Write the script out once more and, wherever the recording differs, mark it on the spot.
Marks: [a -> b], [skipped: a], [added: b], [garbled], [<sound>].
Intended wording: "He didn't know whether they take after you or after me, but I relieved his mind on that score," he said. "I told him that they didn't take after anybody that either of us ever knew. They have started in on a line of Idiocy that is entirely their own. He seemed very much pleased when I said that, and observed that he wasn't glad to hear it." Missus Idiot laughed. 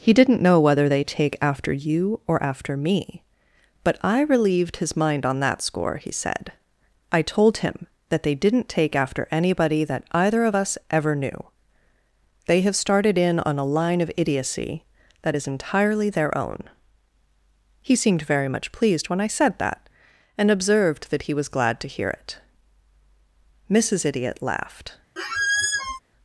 "He didn't know whether they take after you or after me, but I relieved his mind on that score," he said. "I told him that they didn't take after anybody that either of us ever knew. They have started in on a line of Idiocy that is entirely their own. He seemed very much pleased when I said that, and observed that he [wasn't -> was] glad to hear it." Missus Idiot laughed. [squeak]